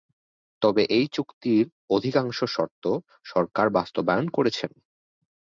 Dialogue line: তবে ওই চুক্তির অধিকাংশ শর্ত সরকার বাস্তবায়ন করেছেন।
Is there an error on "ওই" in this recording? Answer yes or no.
yes